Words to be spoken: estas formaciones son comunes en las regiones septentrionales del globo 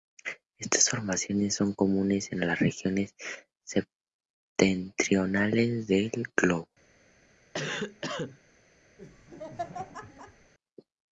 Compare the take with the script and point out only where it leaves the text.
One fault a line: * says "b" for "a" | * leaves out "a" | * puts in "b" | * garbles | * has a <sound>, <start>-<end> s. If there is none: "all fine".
* has a cough, 7.5-8.4 s
* has a laugh, 9.0-10.5 s